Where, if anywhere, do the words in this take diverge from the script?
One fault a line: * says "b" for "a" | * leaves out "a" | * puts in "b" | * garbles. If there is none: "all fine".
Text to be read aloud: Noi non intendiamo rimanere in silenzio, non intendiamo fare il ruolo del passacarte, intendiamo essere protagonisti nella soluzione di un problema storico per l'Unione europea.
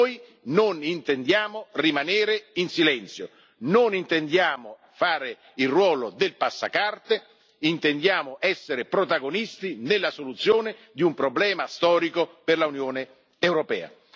all fine